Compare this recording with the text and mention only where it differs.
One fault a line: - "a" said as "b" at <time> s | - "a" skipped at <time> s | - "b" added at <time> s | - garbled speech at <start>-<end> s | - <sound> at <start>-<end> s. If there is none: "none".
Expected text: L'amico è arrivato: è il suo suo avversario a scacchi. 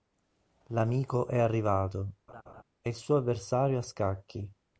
- laugh at 2.3-2.6 s
- "suo" skipped at 3.2 s